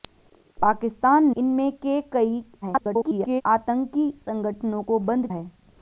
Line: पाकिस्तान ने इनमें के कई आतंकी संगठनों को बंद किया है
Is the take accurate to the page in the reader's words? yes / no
no